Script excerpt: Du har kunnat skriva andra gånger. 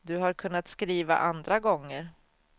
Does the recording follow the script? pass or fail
pass